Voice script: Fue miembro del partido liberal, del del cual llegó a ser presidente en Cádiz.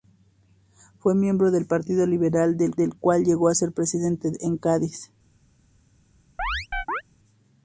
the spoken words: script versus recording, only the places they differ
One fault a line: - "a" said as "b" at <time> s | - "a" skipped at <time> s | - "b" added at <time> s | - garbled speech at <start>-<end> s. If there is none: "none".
none